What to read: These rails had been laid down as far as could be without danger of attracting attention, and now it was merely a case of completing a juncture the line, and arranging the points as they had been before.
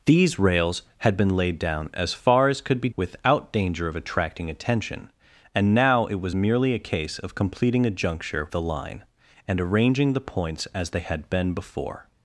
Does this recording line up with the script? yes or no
yes